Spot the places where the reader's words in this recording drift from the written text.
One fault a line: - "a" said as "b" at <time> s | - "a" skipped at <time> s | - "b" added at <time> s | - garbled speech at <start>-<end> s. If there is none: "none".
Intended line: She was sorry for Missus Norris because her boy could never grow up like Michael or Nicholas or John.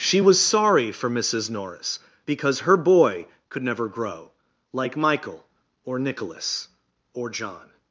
- "up" skipped at 4.3 s